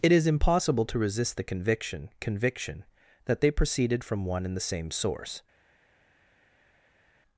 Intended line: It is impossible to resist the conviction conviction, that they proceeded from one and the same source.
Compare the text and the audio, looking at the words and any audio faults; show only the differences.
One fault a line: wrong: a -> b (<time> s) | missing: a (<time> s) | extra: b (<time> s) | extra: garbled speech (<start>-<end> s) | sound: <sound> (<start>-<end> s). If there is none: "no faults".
no faults